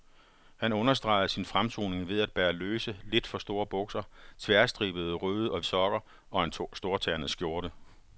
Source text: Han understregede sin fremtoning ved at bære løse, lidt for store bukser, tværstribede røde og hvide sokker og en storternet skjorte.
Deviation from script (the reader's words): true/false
true